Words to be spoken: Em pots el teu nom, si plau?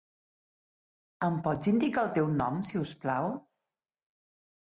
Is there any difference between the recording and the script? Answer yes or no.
yes